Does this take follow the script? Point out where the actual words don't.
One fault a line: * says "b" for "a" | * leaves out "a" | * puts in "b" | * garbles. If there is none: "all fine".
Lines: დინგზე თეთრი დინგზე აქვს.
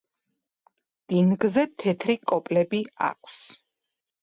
* says "კოპლები" for "დინგზე"